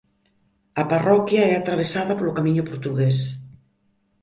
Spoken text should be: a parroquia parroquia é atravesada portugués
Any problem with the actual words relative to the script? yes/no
yes